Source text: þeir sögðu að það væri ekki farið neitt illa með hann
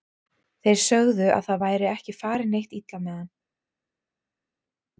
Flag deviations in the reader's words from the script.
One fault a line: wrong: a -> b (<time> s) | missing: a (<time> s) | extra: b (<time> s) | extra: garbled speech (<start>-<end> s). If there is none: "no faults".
no faults